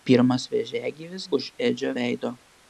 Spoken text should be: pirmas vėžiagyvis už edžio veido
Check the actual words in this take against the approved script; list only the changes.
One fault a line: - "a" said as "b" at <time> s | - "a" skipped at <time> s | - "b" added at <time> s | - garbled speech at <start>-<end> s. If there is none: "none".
none